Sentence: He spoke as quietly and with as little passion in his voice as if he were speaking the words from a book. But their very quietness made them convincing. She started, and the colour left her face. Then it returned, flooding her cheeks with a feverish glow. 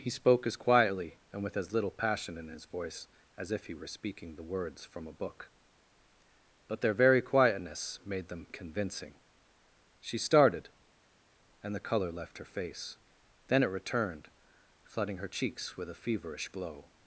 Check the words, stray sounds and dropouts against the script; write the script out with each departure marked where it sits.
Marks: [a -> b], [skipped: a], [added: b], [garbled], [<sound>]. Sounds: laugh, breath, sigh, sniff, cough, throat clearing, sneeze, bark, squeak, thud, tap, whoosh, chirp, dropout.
He spoke as quietly and with as little passion in his voice as if he were speaking the words from a book. But their very quietness made them convincing. She started, and the colour left her face. Then it returned, flooding her cheeks with a feverish glow.